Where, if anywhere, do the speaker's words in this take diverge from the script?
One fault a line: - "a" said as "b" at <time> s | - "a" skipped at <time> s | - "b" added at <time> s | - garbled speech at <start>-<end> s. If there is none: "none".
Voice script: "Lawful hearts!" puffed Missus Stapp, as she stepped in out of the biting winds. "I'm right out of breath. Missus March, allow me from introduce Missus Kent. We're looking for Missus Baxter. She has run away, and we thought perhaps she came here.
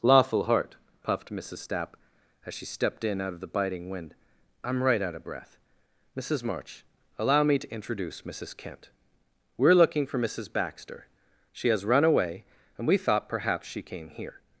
- "hearts" said as "heart" at 0.5 s
- "winds" said as "wind" at 3.9 s
- "from" said as "to" at 7.6 s